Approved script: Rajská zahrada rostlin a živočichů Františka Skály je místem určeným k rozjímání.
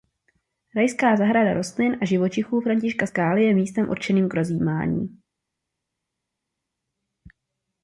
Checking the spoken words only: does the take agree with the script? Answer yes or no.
yes